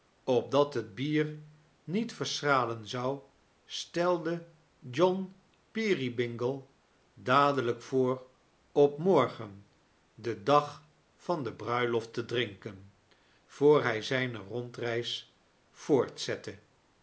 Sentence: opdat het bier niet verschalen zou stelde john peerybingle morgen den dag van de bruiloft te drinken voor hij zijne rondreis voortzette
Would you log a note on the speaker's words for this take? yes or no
yes